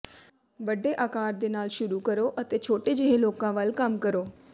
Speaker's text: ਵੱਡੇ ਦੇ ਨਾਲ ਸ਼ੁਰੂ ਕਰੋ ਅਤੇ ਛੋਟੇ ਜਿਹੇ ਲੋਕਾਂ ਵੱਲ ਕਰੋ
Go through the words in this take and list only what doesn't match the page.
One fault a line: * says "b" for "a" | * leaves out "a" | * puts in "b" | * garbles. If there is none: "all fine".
* puts in "ਆਕਾਰ"
* puts in "ਕੰਮ"